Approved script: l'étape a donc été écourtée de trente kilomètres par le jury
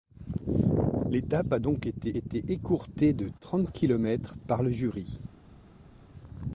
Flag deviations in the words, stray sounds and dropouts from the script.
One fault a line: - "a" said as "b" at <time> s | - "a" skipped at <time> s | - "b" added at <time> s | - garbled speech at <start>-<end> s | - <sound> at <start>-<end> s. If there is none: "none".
- "été" added at 2.1 s